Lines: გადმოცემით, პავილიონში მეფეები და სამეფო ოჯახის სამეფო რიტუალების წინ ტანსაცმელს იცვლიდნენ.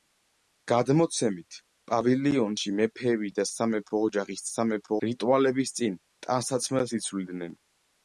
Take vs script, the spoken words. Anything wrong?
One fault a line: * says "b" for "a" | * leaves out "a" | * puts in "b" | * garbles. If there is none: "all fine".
all fine